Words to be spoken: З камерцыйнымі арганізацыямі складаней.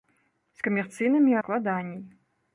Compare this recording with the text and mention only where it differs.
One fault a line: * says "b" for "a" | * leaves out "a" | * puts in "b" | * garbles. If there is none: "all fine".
* leaves out "арганізацыямі"